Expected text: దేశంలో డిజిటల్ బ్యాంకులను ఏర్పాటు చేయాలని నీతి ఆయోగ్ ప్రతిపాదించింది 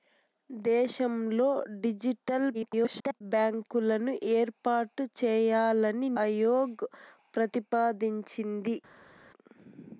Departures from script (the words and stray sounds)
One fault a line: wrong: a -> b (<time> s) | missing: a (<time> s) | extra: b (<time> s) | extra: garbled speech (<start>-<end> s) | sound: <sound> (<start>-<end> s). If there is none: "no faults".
extra: garbled speech (2.5-3.2 s)
missing: నీతి (6.1 s)